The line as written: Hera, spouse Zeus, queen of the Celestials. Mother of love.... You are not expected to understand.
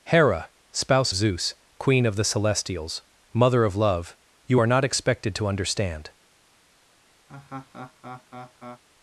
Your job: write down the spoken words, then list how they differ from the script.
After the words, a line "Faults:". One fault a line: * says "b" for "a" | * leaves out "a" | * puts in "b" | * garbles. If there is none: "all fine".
Hera, spouse Zeus, queen of the Celestials. Mother of love.... You are not expected to understand.
Faults:
all fine